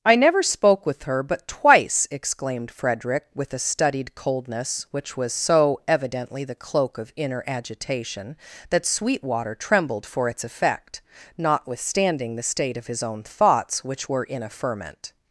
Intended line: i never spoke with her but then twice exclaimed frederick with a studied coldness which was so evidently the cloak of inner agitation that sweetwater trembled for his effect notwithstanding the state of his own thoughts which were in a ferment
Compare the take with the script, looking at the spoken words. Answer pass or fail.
fail